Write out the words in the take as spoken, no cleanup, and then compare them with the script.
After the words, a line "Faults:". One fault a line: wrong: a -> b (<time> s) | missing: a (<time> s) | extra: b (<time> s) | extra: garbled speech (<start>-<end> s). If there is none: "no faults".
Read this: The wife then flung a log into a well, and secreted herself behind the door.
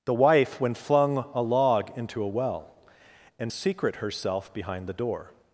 The wife when flung a log into a well, and secret herself behind the door.
Faults:
wrong: then -> when (0.6 s)
wrong: secreted -> secret (3.5 s)